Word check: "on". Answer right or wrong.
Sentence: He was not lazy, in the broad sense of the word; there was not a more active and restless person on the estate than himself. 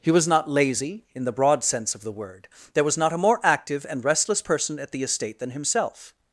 wrong